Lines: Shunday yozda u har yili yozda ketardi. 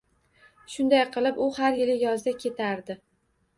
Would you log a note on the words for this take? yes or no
yes